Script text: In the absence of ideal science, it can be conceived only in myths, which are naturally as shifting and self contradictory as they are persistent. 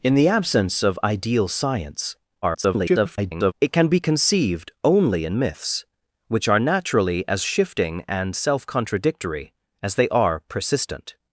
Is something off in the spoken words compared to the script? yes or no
yes